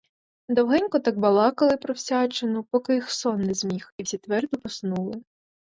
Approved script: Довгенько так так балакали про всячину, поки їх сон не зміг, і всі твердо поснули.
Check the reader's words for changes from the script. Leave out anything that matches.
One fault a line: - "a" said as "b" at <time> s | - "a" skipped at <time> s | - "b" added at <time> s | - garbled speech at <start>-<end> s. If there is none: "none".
- "так" skipped at 1.2 s